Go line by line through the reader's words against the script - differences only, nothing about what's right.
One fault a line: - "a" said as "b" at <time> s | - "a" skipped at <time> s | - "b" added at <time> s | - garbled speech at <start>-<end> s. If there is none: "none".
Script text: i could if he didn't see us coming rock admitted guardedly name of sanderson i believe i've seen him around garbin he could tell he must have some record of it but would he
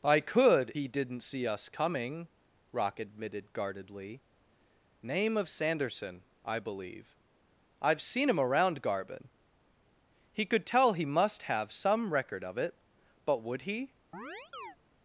- "if" skipped at 0.7 s